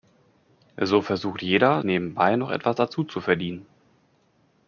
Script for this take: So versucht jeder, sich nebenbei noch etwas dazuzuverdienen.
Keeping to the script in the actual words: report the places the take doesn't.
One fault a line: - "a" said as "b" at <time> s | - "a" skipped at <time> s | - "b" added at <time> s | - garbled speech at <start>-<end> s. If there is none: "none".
- "sich" skipped at 1.8 s